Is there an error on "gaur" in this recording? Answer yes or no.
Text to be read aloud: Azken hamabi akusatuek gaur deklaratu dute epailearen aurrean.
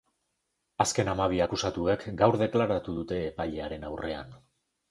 no